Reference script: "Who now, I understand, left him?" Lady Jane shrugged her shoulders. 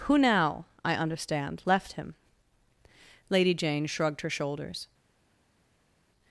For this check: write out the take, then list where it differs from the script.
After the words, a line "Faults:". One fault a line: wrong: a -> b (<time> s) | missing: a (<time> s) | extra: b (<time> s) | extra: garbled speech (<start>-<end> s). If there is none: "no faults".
"Who now, I understand, left him?" Lady Jane shrugged her shoulders.
Faults:
no faults